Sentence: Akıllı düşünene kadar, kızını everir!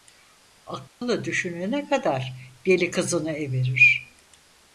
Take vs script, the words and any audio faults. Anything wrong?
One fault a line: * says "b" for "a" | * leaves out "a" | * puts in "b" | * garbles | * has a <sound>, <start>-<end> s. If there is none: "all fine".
* has a dropout, 0.9-1.0 s
* puts in "deli"